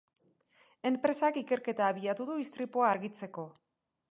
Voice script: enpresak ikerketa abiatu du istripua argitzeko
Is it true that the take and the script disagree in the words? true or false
false